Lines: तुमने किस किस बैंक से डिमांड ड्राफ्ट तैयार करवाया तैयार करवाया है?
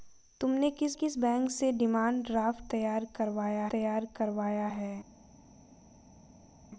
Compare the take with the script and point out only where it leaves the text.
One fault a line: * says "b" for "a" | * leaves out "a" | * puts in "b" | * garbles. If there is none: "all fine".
all fine